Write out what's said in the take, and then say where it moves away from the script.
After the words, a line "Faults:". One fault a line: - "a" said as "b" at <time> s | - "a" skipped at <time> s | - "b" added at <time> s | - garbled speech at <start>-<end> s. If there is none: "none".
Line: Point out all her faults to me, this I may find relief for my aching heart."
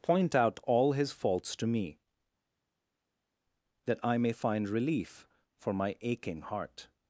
Point out all his faults to me, that I may find relief for my aching heart."
Faults:
- "her" said as "his" at 0.9 s
- "this" said as "that" at 3.8 s